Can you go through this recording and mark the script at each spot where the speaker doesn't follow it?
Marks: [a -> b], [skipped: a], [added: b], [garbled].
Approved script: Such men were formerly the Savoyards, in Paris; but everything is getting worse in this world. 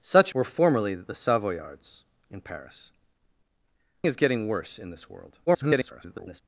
Such [skipped: men] were formerly the Savoyards, in Paris; [skipped: but everything] is getting worse in this world. [garbled]